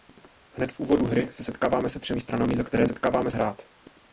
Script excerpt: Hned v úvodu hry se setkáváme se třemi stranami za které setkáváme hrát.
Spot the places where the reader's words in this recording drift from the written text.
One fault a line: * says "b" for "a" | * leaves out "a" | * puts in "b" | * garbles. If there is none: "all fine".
all fine